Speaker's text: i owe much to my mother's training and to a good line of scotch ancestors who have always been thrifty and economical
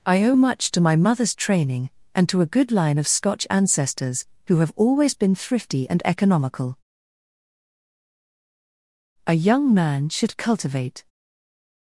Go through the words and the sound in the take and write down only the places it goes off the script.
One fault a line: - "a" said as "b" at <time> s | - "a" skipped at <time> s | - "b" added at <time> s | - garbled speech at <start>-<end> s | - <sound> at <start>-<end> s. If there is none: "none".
- "a young man should cultivate" added at 9.3 s